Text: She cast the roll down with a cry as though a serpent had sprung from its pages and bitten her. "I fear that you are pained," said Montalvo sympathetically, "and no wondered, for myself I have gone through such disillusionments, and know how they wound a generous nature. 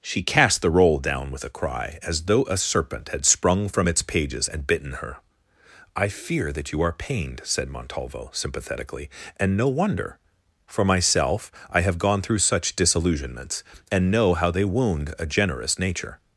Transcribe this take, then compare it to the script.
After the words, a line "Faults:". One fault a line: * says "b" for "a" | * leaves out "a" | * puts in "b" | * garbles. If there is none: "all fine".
She cast the roll down with a cry as though a serpent had sprung from its pages and bitten her. "I fear that you are pained," said Montalvo sympathetically, "and no wonder, for myself I have gone through such disillusionments, and know how they wound a generous nature.
Faults:
* says "wonder" for "wondered"